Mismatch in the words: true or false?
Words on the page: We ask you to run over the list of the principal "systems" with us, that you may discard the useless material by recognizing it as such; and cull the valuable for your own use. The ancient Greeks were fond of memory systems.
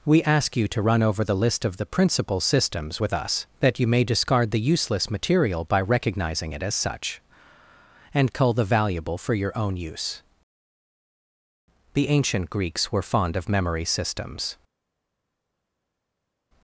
false